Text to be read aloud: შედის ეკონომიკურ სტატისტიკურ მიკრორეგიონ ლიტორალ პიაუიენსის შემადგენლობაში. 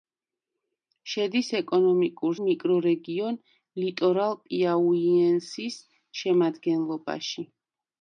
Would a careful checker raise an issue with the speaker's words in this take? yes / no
yes